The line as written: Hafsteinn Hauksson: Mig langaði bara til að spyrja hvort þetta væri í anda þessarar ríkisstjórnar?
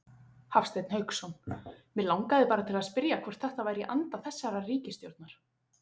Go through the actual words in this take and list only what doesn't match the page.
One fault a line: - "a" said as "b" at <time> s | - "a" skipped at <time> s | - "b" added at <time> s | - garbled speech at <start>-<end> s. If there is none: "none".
none